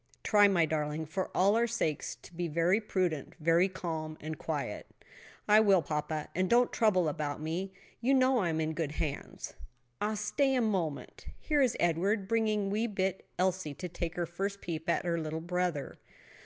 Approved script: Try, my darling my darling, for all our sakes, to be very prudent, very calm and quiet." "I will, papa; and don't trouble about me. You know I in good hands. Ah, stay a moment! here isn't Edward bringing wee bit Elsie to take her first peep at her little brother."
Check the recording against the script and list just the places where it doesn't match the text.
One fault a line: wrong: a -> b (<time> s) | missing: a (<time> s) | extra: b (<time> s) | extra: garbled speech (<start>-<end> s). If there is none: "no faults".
missing: my darling (1.1 s)
extra: am (8.5 s)
wrong: isn't -> is (11.6 s)